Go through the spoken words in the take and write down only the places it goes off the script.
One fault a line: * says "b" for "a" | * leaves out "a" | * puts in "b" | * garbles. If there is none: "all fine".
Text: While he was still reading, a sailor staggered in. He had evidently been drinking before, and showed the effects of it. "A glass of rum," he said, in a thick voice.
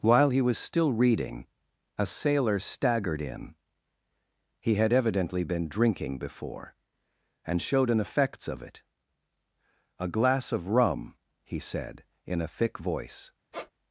* says "an" for "the"